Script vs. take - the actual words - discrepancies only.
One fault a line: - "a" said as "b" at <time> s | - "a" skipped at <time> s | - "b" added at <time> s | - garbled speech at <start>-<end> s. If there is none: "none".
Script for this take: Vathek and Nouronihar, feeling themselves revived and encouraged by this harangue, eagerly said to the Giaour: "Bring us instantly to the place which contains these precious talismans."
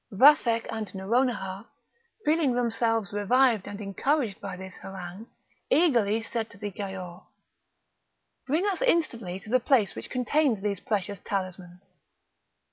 none